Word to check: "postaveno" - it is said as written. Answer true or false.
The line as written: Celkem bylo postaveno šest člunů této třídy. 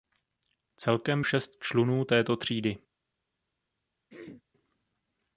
false